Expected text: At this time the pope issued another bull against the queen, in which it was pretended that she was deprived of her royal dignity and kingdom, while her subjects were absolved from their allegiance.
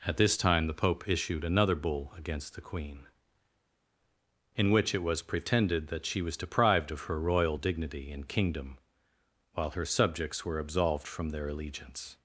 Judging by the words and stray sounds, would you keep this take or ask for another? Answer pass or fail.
pass